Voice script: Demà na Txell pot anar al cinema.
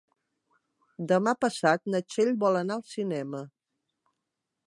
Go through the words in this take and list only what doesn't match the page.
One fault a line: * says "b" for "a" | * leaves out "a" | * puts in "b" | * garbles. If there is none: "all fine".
* puts in "passat"
* says "vol" for "pot"